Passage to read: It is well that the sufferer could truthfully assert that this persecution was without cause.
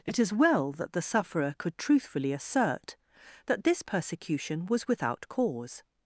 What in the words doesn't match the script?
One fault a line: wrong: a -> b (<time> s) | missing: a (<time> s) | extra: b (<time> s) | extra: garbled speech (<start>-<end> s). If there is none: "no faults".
no faults